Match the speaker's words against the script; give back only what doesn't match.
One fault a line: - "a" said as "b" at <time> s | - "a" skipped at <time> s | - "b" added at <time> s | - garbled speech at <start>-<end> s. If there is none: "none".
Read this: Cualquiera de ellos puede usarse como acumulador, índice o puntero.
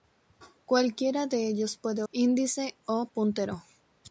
- "usarse como acumulador" skipped at 2.0 s